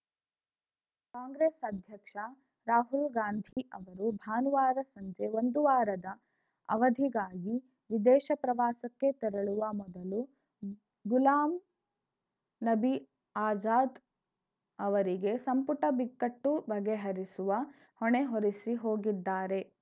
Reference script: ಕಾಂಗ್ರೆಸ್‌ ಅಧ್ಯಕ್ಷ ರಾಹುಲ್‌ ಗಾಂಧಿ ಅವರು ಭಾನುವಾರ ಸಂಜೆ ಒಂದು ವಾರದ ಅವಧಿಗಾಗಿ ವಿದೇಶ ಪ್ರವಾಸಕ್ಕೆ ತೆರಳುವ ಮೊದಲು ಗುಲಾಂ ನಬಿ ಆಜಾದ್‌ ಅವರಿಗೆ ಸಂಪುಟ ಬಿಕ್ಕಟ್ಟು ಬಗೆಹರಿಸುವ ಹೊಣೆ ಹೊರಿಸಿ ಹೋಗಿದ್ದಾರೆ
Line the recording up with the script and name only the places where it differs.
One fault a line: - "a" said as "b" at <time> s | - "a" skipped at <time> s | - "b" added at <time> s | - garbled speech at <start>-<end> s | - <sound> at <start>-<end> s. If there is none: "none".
- dropout at 3.5-3.6 s